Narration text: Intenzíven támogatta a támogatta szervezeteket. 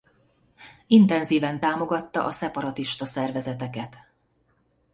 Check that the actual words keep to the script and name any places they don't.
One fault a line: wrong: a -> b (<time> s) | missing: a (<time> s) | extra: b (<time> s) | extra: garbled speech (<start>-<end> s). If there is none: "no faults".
wrong: támogatta -> szeparatista (2.3 s)